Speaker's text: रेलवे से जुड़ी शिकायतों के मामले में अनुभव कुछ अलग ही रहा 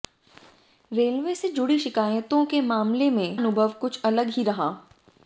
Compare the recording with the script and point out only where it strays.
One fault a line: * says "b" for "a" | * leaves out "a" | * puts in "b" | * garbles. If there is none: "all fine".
all fine